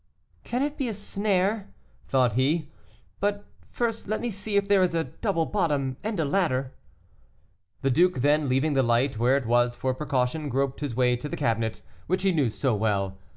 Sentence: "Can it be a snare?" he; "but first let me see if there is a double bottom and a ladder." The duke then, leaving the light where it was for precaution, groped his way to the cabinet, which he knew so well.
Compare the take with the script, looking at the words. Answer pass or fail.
fail